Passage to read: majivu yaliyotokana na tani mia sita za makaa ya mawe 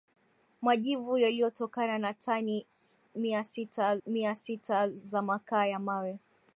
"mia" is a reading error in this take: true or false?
false